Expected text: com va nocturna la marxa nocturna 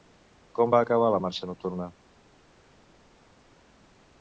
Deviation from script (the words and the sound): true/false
true